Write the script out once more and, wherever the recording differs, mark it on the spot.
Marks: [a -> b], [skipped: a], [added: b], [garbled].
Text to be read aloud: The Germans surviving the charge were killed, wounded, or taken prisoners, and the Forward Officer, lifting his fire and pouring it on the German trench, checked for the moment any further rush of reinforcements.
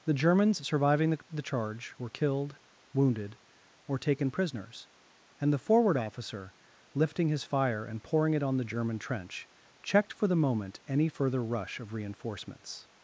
The Germans surviving the [added: the] charge were killed, wounded, or taken prisoners, and the Forward Officer, lifting his fire and pouring it on the German trench, checked for the moment any further rush of reinforcements.